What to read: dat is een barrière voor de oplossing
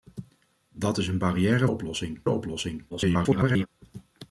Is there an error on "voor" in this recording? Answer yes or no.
yes